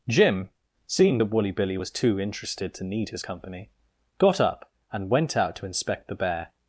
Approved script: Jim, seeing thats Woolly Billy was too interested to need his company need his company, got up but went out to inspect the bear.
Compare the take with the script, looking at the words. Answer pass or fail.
fail